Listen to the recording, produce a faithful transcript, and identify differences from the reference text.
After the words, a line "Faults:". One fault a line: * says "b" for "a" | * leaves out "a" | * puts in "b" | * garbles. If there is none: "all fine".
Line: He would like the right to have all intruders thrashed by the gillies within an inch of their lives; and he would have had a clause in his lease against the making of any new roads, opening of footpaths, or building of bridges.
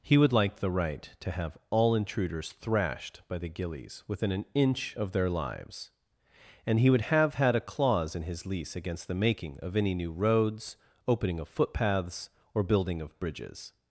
He would like the right to have all intruders thrashed by the gillies within an inch of their lives; and he would have had a clause in his lease against the making of any new roads, opening of footpaths, or building of bridges.
Faults:
all fine